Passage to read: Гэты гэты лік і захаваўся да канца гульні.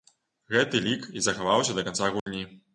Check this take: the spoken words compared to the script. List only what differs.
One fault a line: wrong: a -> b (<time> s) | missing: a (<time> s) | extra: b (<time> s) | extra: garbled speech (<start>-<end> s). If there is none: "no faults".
missing: гэты (0.8 s)